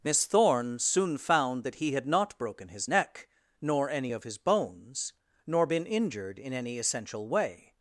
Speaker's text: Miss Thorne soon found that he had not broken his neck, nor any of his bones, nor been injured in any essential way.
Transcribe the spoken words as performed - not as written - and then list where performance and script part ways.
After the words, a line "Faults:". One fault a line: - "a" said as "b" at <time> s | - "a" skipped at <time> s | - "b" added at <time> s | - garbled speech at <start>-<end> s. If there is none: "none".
Miss Thorne soon found that he had not broken his neck, nor any of his bones, nor been injured in any essential way.
Faults:
none